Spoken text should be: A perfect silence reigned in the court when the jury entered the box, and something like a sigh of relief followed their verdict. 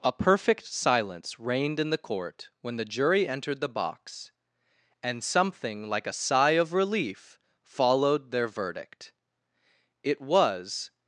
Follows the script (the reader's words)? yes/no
no